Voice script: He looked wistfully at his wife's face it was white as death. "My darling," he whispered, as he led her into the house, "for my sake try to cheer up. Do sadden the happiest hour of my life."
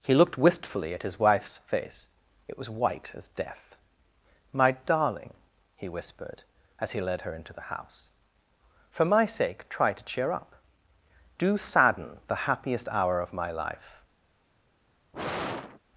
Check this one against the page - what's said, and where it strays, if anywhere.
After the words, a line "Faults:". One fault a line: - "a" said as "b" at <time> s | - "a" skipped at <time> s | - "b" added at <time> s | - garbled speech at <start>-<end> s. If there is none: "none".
He looked wistfully at his wife's face it was white as death. "My darling," he whispered, as he led her into the house, "for my sake try to cheer up. Do sadden the happiest hour of my life."
Faults:
none